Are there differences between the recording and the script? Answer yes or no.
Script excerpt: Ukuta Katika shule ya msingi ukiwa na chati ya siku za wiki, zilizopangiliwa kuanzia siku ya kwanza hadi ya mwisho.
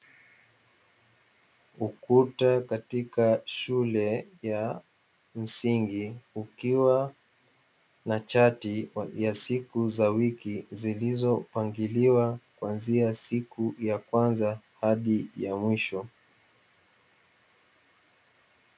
no